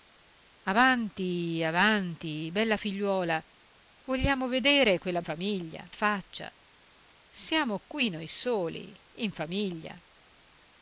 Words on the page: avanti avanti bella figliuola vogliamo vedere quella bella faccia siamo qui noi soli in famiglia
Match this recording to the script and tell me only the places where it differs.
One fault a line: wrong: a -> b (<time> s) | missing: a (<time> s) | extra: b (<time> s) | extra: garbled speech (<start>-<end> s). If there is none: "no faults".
wrong: bella -> famiglia (5.2 s)